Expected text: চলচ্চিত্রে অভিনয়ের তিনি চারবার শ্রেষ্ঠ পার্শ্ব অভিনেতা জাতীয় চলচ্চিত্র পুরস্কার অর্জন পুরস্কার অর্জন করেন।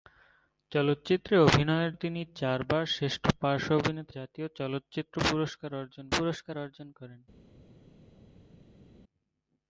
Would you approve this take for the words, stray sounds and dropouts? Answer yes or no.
yes